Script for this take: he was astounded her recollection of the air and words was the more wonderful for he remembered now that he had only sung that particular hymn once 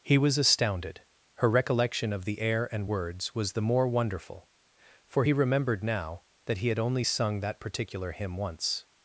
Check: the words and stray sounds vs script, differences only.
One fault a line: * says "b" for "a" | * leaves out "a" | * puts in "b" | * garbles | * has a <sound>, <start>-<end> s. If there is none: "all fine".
all fine